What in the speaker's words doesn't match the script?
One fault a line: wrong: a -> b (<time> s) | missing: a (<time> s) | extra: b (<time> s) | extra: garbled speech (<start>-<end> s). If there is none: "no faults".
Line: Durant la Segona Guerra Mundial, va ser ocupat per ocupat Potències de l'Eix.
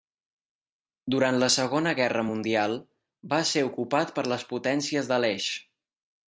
wrong: ocupat -> les (4.3 s)